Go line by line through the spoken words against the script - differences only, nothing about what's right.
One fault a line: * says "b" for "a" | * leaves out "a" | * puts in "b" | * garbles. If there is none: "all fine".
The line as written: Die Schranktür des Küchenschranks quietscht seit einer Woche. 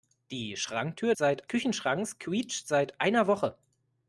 * says "seit" for "des"